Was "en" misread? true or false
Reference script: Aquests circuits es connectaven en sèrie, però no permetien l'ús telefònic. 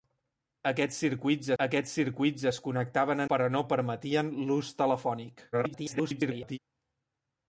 true